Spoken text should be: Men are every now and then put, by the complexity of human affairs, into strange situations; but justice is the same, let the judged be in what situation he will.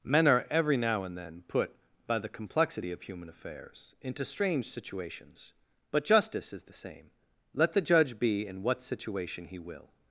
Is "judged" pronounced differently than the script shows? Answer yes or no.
yes